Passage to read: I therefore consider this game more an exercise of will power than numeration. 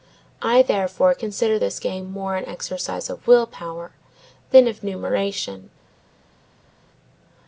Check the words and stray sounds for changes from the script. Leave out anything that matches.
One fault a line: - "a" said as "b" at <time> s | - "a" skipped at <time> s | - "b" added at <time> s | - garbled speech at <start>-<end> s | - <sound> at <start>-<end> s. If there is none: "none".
- "of" added at 4.7 s